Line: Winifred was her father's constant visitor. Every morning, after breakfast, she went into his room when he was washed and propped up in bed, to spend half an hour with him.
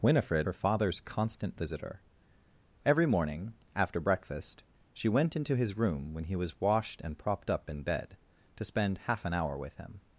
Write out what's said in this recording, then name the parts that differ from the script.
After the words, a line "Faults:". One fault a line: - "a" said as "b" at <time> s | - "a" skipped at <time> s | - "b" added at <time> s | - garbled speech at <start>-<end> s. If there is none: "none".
Winifred her father's constant visitor. Every morning, after breakfast, she went into his room when he was washed and propped up in bed, to spend half an hour with him.
Faults:
- "was" skipped at 0.5 s